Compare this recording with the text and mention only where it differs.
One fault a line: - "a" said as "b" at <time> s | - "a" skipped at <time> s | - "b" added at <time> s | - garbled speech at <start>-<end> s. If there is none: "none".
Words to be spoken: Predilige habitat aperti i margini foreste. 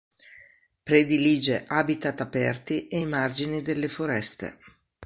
- "e" added at 2.9 s
- "delle" added at 3.6 s